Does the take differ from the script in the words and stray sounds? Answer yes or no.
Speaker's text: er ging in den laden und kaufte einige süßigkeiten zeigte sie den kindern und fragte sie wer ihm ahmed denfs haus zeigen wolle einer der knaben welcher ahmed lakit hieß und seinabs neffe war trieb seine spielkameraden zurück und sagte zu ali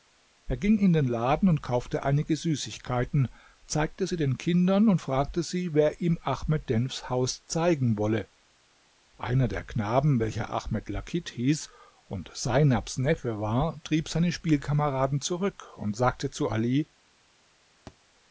yes